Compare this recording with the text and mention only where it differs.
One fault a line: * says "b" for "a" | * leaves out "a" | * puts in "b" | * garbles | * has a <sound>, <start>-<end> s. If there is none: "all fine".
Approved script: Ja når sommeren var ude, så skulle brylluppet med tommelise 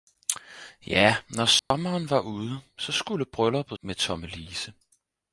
* has a dropout, 1.6-1.7 s